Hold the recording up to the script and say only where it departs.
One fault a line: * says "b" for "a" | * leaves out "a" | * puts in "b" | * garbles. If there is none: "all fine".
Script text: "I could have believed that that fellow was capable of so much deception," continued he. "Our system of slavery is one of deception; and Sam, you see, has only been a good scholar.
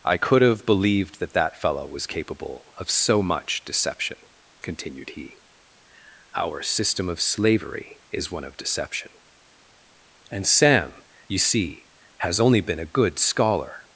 all fine